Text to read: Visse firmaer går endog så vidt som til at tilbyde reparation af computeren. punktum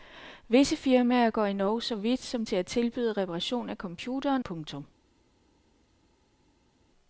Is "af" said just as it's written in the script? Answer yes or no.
yes